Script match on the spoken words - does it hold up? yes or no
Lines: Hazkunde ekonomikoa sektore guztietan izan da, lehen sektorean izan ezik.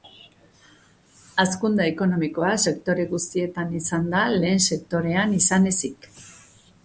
yes